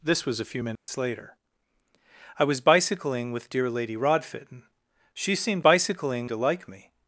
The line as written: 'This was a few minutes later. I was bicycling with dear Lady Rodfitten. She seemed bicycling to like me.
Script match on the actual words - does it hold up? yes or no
yes